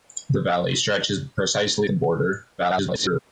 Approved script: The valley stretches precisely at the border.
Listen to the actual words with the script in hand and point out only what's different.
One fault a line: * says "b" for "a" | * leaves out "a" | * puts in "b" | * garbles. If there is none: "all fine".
* leaves out "at"
* garbles